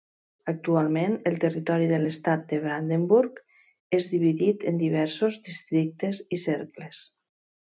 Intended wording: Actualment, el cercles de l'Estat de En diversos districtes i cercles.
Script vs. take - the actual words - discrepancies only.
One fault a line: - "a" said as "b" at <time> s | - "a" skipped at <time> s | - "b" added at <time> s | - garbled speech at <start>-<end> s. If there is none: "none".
- "cercles" said as "territori" at 1.4 s
- "Brandenburg és dividit" added at 2.7 s